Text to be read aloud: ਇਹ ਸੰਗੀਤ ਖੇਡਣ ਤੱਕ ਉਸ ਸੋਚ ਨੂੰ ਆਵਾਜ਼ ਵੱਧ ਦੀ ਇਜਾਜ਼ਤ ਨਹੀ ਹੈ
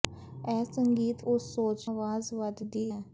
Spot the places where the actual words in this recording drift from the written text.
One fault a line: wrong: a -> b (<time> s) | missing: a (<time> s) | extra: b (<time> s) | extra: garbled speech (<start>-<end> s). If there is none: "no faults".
missing: ਖੇਡਣ ਤੱਕ (1.2 s)
missing: ਨੂੰ (1.9 s)
missing: ਇਜਾਜ਼ਤ ਨਹੀ (2.8 s)